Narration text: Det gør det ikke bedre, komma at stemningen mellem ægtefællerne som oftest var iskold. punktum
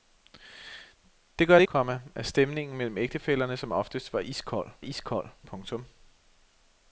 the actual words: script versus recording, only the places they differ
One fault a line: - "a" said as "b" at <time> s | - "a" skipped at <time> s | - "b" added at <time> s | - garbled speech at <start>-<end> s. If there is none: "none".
- "ikke bedre" skipped at 1.6 s
- "iskold" added at 4.8 s